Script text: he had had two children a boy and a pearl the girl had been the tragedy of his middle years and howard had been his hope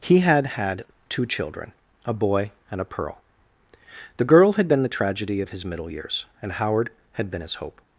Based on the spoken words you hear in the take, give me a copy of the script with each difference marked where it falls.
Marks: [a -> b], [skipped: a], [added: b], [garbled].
he had had two children a boy and a pearl the girl had been the tragedy of his middle years and howard had been his hope